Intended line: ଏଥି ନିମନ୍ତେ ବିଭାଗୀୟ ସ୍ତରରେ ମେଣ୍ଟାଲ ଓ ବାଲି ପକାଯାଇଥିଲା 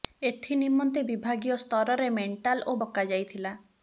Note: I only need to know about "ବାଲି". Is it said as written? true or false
false